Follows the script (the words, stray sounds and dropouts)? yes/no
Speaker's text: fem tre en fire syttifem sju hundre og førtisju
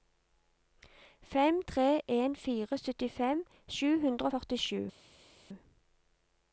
yes